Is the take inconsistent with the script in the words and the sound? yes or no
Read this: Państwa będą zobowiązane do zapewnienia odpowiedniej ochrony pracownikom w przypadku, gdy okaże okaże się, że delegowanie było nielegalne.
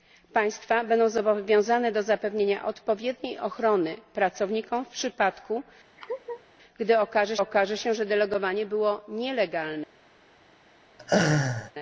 yes